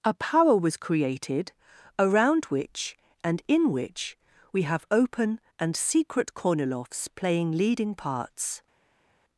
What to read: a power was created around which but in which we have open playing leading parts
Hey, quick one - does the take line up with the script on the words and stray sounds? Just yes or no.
no